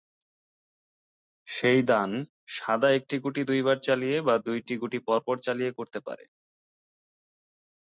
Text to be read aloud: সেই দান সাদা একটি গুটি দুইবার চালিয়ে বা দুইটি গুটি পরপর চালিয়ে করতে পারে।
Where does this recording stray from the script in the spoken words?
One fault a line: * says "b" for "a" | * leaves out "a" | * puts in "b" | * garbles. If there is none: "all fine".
all fine